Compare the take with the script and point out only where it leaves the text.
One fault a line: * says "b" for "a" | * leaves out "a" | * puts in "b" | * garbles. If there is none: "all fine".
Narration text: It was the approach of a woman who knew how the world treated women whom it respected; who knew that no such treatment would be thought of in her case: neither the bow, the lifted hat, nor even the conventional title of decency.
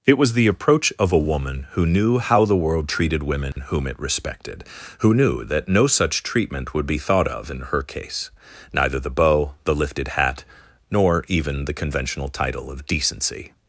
all fine